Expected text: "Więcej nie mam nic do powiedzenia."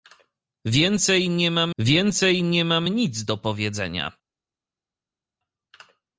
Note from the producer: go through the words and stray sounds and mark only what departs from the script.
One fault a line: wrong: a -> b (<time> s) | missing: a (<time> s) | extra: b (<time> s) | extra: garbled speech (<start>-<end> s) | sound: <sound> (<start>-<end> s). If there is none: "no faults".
extra: więcej nie mam (1.8 s)